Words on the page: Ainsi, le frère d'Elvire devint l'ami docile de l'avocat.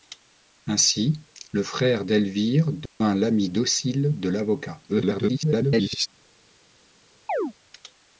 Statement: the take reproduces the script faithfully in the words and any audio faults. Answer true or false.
false